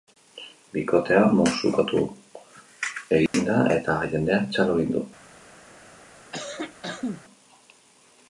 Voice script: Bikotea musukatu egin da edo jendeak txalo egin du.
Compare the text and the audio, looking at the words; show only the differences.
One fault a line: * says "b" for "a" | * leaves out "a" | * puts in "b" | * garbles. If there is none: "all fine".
* says "eta" for "edo"